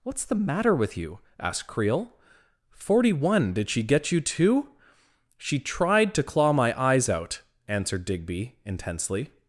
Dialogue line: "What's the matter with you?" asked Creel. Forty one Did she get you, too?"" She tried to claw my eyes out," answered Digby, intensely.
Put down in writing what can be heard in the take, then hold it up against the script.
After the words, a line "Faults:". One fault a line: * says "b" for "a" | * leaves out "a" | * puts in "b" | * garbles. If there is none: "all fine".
"What's the matter with you?" asked Creel. Forty one Did she get you, too?"" She tried to claw my eyes out," answered Digby, intensely.
Faults:
all fine